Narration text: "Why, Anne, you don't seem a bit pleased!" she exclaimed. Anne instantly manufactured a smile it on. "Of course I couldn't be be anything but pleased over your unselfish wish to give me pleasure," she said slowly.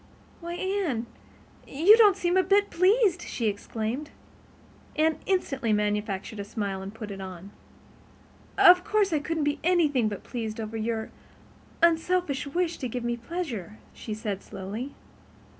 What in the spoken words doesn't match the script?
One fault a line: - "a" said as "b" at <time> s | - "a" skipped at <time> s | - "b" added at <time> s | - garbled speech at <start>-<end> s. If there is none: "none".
- "and put" added at 6.8 s
- "be" skipped at 9.6 s